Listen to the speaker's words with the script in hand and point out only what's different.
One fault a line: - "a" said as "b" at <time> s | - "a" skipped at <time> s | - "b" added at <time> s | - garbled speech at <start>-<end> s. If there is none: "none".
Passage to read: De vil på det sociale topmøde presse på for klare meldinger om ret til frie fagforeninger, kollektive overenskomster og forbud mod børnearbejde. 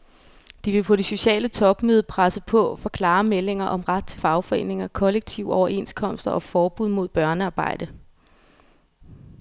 - "frie" skipped at 4.2 s